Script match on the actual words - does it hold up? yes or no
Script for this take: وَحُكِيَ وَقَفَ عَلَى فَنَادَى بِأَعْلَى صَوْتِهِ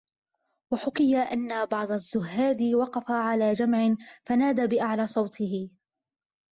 no